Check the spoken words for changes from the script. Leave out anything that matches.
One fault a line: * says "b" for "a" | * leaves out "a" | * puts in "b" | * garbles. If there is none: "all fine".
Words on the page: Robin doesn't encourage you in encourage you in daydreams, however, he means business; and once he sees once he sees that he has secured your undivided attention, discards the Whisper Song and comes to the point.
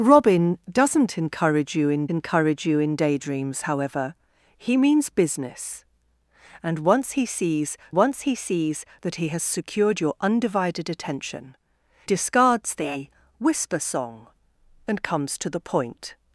all fine